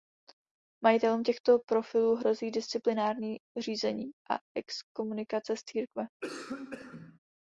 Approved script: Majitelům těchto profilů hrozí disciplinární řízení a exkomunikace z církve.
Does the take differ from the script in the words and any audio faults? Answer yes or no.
yes